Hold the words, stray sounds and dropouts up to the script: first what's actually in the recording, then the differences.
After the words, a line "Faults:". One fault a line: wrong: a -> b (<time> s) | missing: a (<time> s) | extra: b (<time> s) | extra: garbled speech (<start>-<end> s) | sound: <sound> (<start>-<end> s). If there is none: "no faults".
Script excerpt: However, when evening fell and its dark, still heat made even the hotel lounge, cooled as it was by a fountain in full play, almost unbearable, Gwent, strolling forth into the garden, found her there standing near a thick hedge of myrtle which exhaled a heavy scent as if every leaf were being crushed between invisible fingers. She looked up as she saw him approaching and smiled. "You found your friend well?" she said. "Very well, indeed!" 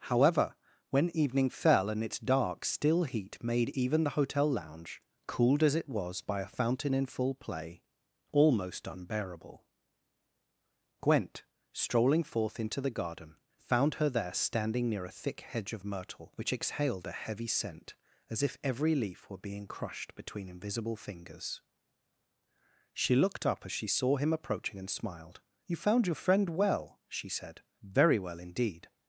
However, when evening fell and its dark, still heat made even the hotel lounge, cooled as it was by a fountain in full play, almost unbearable, Gwent, strolling forth into the garden, found her there standing near a thick hedge of myrtle which exhaled a heavy scent as if every leaf were being crushed between invisible fingers. She looked up as she saw him approaching and smiled. "You found your friend well?" she said. "Very well, indeed!"
Faults:
no faults